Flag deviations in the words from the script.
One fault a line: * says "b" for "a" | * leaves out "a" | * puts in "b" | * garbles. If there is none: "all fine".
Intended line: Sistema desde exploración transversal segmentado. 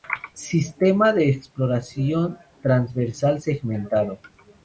* says "de" for "desde"